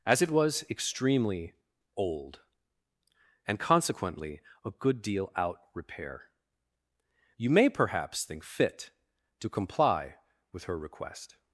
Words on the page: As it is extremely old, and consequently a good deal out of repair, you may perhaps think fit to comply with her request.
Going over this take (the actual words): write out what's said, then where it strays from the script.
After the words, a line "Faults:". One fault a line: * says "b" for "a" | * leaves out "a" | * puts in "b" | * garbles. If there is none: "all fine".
As it was extremely old, and consequently a good deal out repair, you may perhaps think fit to comply with her request.
Faults:
* says "was" for "is"
* leaves out "of"